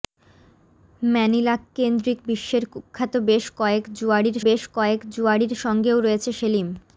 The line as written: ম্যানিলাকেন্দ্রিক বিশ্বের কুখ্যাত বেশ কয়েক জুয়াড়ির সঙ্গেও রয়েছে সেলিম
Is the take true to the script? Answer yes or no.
no